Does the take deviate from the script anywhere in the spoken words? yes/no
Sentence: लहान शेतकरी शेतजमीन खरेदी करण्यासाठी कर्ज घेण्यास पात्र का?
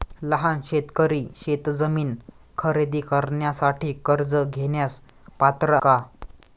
no